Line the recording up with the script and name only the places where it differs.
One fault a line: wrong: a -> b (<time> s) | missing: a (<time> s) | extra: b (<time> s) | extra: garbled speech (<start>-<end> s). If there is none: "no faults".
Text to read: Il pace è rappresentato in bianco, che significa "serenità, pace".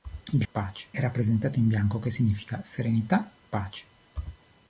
no faults